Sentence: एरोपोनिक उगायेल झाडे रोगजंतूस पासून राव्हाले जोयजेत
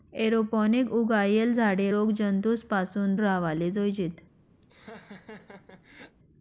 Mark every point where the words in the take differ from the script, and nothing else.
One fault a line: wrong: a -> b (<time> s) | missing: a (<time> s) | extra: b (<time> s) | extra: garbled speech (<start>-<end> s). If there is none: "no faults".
no faults